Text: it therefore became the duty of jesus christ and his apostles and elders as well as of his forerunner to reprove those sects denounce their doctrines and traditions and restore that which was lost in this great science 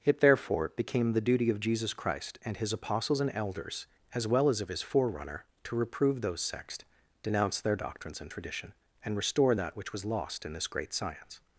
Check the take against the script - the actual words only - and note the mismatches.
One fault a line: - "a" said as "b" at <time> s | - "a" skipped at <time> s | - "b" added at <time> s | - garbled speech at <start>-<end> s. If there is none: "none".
- "traditions" said as "tradition" at 8.3 s